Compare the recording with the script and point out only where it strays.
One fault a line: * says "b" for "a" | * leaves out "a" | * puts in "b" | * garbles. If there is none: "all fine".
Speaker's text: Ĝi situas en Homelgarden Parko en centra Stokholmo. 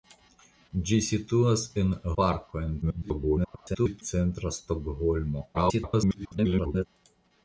* leaves out "Homelgarden"
* garbles
* garbles